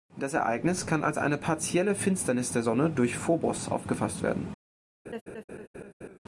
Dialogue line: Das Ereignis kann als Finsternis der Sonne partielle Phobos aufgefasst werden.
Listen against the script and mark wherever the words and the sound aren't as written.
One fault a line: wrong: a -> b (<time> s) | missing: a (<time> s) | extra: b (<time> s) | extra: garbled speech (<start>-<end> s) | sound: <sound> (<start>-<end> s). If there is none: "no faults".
extra: eine partielle (1.2 s)
wrong: partielle -> durch (2.9 s)
sound: laugh (5.1-6.2 s)